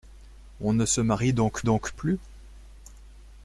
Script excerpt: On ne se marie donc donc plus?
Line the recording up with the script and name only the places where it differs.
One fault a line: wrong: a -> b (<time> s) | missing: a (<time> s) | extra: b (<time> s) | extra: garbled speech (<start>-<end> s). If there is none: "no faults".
no faults